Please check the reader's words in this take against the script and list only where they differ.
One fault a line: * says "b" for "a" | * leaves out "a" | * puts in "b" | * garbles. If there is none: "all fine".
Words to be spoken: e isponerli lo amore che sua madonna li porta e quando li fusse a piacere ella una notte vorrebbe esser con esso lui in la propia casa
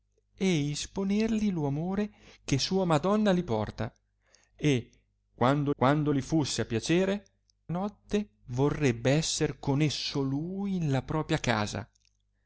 * puts in "quando"
* leaves out "ella una"